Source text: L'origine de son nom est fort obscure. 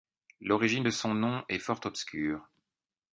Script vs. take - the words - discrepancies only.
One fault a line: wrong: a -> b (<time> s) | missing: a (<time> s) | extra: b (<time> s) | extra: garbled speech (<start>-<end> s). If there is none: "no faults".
no faults